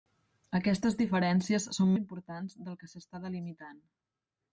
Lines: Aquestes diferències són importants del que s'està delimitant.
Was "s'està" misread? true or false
false